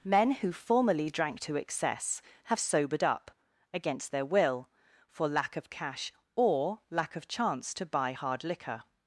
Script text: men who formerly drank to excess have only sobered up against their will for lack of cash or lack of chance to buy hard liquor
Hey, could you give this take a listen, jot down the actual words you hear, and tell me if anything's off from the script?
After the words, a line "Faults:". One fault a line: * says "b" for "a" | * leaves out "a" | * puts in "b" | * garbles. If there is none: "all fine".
men who formerly drank to excess have sobered up against their will for lack of cash or lack of chance to buy hard liquor
Faults:
* leaves out "only"